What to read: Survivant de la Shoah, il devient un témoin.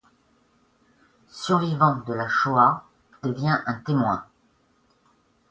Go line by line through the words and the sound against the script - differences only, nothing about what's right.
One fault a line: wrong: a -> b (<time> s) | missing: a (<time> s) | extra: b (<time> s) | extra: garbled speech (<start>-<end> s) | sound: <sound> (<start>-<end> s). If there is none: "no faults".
missing: il (2.9 s)